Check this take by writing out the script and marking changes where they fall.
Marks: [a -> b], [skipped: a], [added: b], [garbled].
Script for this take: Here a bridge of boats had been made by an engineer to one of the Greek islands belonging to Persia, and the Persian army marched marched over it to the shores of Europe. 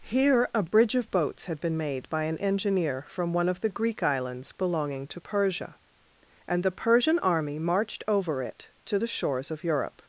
Here a bridge of boats had been made by an engineer [to -> from] one of the Greek islands belonging to Persia, and the Persian army marched [skipped: marched] over it to the shores of Europe.